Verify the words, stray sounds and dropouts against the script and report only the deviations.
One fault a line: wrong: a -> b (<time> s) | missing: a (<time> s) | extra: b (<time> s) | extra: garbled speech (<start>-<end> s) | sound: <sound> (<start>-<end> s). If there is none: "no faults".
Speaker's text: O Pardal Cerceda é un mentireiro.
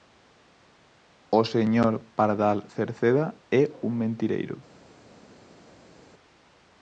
extra: señor (1.5 s)